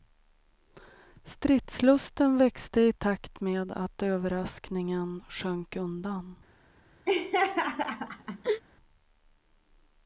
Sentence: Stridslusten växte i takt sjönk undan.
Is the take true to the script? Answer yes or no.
no